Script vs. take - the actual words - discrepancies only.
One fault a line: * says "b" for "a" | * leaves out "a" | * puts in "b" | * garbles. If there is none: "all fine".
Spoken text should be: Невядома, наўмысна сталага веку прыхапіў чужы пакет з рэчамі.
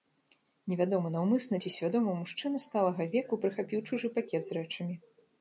* puts in "ці свядома мужчына"